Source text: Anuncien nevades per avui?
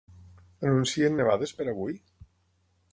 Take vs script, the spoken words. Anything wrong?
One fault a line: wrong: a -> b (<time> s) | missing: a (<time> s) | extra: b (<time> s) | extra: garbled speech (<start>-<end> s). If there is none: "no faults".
no faults